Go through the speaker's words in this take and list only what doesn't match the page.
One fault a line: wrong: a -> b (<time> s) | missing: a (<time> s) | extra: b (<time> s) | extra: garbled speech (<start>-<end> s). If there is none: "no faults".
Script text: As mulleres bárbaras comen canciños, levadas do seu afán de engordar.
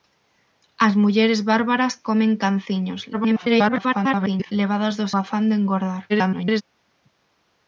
extra: garbled speech (3.1-4.5 s)
missing: seu (5.1 s)
extra: garbled speech (6.1-6.6 s)